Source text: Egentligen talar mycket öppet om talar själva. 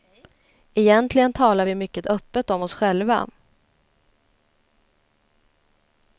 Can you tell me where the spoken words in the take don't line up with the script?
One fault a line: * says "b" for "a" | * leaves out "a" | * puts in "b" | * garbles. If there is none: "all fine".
* puts in "vi"
* says "oss" for "talar"